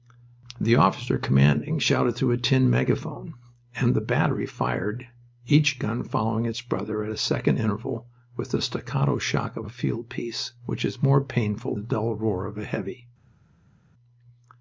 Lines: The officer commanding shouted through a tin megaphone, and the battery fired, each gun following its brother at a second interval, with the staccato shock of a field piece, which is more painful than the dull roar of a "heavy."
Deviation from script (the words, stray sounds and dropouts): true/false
true